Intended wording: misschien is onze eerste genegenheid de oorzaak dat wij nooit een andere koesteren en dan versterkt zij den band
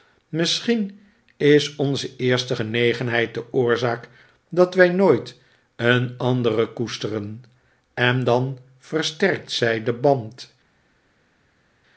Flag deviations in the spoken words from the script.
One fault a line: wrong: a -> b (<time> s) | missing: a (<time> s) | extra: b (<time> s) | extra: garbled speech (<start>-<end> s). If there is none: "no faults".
no faults